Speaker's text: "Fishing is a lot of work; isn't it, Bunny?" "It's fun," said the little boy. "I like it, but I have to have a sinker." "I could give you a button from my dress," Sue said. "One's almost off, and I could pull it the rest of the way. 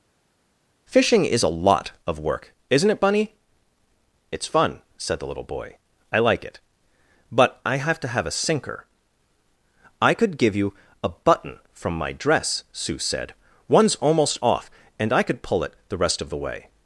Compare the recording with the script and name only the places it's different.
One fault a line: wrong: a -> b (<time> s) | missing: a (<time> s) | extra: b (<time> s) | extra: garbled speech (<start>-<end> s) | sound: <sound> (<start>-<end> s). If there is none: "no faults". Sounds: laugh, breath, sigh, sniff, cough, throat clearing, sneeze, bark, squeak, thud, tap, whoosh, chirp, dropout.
no faults